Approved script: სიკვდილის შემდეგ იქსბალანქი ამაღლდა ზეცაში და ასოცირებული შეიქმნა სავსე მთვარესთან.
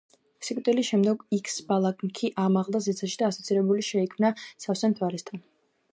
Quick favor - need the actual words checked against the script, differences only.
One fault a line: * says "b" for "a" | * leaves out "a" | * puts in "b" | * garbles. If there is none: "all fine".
all fine